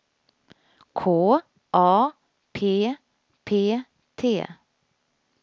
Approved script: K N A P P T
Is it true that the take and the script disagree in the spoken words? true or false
true